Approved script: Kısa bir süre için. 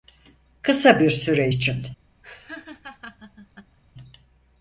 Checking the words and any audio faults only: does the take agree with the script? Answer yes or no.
no